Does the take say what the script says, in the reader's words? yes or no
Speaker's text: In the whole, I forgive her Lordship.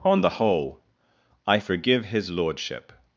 no